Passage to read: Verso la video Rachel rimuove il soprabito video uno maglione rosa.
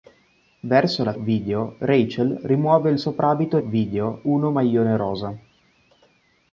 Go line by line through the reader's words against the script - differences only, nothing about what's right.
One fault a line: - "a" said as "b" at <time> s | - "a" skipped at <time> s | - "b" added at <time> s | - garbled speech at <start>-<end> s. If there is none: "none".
none